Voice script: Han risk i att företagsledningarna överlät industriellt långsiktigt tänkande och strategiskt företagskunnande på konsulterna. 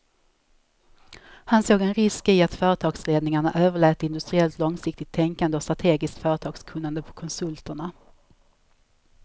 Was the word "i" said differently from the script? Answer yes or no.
no